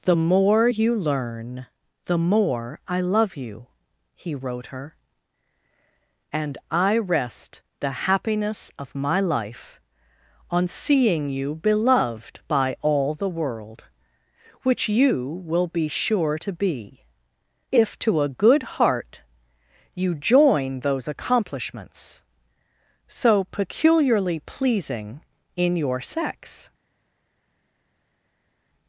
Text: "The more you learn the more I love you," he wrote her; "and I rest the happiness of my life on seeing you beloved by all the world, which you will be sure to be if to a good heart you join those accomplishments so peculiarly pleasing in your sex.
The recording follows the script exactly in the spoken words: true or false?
true